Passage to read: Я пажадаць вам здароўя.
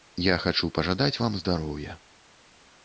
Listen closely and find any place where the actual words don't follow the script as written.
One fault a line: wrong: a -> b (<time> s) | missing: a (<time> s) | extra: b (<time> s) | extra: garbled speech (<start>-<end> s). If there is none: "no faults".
extra: хачу (0.5 s)